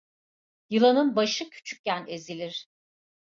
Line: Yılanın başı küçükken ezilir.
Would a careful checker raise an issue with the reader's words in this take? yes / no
no